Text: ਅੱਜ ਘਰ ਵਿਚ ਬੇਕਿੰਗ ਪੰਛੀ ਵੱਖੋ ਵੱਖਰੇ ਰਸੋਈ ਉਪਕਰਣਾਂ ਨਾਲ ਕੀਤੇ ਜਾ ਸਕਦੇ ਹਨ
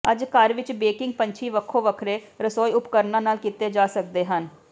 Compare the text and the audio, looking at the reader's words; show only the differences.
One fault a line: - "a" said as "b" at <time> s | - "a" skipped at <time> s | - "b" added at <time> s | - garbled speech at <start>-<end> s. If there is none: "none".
none